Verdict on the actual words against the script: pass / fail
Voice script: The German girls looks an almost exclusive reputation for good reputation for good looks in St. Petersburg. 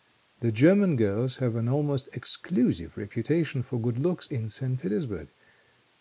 fail